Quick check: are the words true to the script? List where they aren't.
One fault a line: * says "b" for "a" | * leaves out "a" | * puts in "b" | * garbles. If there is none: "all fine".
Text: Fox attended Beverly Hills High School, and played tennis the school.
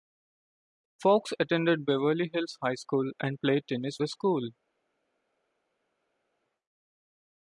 all fine